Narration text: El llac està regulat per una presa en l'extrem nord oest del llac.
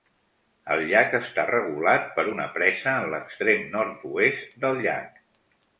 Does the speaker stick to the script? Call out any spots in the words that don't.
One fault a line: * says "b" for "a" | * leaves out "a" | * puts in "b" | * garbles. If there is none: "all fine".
all fine